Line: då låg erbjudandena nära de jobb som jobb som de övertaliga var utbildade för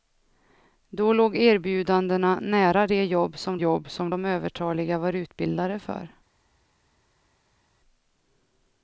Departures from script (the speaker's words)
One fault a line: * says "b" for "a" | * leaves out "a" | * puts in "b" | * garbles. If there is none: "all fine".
all fine